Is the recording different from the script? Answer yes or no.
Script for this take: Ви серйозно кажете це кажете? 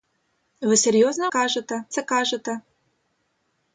no